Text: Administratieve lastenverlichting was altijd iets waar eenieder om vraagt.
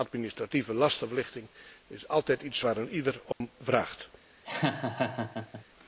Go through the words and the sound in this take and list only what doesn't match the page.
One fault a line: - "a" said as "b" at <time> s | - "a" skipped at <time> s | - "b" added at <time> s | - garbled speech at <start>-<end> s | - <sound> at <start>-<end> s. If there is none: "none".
- "was" said as "is" at 1.9 s
- dropout at 3.3-3.4 s
- laugh at 4.4-5.6 s